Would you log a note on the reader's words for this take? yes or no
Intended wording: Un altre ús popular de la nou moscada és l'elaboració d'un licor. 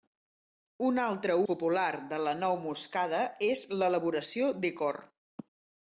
yes